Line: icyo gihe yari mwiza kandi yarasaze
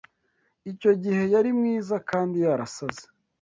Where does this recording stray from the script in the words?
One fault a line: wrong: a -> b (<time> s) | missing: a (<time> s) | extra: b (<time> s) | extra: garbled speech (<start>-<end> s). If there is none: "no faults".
no faults